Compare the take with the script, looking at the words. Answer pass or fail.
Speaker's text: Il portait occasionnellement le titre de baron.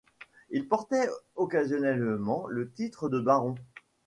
pass